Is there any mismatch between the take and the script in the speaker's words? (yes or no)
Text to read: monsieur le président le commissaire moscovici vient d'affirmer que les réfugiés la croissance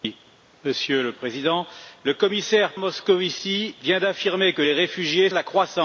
no